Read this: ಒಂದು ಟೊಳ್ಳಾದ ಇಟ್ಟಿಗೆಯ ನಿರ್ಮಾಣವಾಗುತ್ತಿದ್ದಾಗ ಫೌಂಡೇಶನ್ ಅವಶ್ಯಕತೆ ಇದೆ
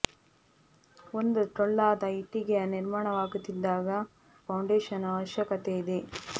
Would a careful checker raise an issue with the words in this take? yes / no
no